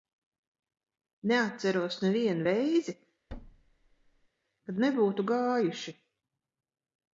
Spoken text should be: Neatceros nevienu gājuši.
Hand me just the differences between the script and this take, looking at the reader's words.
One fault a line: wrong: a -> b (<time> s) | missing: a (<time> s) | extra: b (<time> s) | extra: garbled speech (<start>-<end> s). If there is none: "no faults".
extra: reizi kad nebūtu (2.5 s)